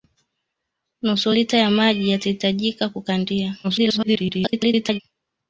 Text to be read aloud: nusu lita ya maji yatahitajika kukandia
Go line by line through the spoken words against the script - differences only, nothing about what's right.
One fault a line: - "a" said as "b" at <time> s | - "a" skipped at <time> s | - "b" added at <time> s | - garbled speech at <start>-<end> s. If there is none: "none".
- garbled speech at 3.6-5.0 s